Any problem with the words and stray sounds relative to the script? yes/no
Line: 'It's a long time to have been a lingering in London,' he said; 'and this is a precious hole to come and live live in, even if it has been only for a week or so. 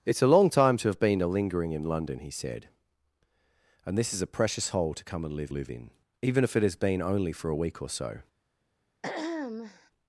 yes